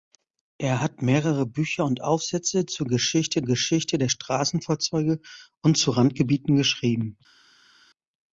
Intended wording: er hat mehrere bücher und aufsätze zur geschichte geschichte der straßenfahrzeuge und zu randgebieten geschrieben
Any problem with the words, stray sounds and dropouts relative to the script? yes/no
no